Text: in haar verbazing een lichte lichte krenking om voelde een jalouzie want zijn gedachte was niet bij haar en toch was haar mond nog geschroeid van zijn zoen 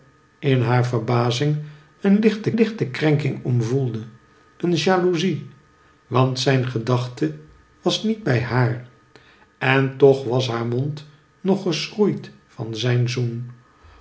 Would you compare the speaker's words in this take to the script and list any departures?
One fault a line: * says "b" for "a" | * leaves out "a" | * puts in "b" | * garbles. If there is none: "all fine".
all fine